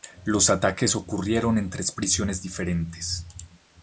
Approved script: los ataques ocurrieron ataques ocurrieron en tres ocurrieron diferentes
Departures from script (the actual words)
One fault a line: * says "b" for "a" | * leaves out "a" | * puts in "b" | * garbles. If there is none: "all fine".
* leaves out "ataques ocurrieron"
* says "prisiones" for "ocurrieron"